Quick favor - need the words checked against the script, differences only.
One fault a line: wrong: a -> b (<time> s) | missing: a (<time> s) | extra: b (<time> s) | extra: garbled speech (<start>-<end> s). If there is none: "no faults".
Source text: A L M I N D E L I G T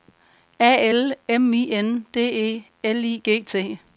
no faults